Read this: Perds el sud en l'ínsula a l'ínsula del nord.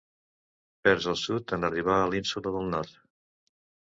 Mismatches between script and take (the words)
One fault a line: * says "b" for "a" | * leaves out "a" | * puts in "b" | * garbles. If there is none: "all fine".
* says "arribar" for "l'ínsula"